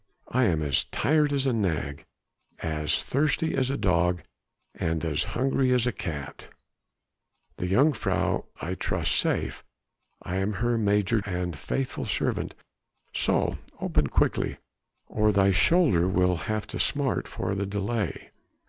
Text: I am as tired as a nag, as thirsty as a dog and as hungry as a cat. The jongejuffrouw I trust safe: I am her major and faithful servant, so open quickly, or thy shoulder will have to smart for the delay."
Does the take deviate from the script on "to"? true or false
false